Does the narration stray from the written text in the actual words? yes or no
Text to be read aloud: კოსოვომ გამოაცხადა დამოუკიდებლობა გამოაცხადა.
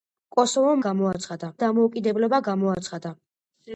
no